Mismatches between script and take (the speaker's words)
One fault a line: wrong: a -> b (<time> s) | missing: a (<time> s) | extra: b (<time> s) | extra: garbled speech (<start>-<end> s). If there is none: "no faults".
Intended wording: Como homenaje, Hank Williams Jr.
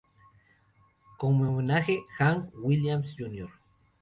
no faults